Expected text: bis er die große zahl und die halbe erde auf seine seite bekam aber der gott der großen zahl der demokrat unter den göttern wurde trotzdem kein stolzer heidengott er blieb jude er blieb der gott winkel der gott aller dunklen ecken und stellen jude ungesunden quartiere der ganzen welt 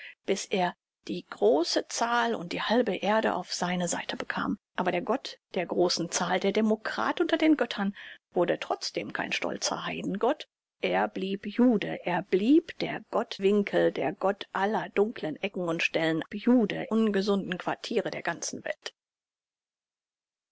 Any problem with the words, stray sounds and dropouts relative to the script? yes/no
no